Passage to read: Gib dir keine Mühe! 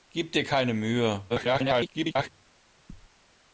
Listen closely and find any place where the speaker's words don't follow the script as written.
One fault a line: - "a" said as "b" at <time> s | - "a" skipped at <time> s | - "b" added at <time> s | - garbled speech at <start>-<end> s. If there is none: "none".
- garbled speech at 1.3-2.3 s